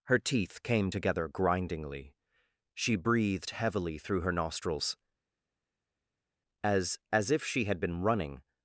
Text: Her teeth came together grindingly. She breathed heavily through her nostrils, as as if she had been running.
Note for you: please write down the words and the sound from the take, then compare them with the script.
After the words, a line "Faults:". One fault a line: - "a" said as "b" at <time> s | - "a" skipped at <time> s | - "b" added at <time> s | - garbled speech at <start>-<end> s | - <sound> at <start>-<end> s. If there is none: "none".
Her teeth came together grindingly. She breathed heavily through her nostrils, as as if she had been running.
Faults:
none